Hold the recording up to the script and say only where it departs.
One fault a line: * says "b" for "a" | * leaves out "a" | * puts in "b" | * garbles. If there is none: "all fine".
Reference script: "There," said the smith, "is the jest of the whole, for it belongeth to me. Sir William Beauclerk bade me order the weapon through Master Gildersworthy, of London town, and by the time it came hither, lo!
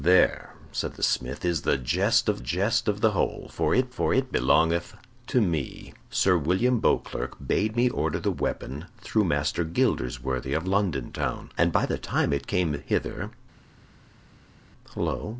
* puts in "jest of"
* puts in "for it"